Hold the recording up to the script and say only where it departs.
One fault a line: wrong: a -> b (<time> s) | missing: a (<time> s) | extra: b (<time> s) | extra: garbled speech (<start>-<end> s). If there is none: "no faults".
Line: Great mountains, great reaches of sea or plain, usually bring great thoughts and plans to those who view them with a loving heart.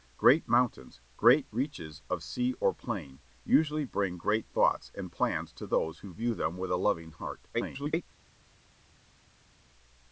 extra: garbled speech (7.5-8.0 s)